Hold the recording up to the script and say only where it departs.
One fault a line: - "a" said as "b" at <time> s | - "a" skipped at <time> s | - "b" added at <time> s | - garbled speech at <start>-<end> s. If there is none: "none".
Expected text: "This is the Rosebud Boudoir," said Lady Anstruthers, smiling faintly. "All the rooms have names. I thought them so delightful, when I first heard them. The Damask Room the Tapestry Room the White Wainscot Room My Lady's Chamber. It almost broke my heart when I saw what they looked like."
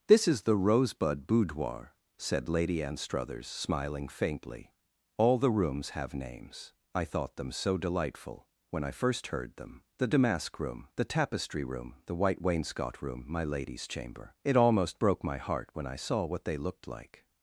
none